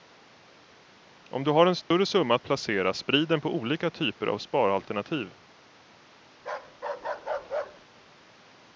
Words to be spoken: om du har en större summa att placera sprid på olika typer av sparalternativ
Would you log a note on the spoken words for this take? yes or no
yes